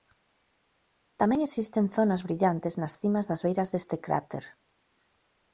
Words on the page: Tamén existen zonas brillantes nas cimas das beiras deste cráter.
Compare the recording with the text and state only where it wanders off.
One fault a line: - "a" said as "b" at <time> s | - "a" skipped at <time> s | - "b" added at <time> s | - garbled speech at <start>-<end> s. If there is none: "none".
none